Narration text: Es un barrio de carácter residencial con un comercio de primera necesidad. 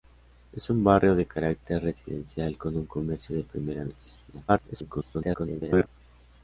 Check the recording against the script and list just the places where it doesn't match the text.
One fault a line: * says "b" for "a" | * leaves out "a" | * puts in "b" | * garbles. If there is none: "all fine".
* garbles